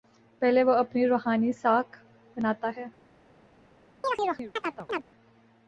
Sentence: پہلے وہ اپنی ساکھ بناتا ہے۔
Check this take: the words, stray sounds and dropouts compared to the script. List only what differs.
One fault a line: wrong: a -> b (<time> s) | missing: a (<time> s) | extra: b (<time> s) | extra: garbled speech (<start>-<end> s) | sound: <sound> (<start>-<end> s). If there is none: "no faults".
extra: روحانی (1.1 s)
sound: chirp (4.0-5.0 s)